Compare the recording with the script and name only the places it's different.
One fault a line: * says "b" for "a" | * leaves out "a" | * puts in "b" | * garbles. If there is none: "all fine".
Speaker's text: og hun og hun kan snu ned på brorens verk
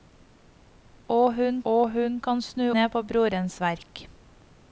all fine